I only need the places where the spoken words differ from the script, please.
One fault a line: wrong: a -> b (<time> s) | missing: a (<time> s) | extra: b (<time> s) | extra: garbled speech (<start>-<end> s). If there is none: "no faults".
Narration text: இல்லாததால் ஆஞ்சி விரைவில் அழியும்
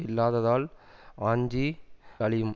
missing: விரைவில் (1.7 s)